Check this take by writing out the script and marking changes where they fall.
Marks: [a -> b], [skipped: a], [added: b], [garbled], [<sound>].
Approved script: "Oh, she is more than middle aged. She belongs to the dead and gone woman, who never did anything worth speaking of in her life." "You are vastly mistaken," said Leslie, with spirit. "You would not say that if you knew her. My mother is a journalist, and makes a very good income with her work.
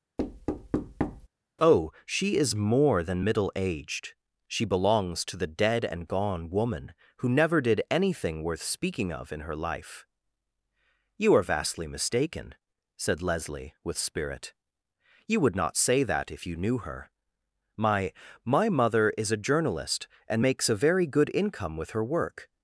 [thud] "Oh, she is more than middle aged. She belongs to the dead and gone woman, who never did anything worth speaking of in her life." "You are vastly mistaken," said Leslie, with spirit. "You would not say that if you knew her. My [added: My] mother is a journalist, and makes a very good income with her work.